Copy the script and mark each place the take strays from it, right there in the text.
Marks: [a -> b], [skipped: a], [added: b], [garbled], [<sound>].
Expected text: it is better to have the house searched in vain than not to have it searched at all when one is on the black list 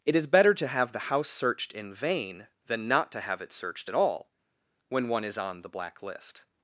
it is better to have the house searched in vain than not to have it searched at all when one is on the black list